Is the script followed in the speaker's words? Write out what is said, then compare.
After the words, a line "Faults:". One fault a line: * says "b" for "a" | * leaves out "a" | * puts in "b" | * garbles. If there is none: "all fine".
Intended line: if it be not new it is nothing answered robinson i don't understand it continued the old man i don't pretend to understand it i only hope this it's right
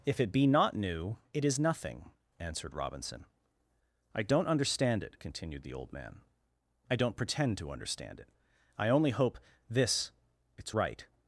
if it be not new it is nothing answered robinson i don't understand it continued the old man i don't pretend to understand it i only hope this it's right
Faults:
all fine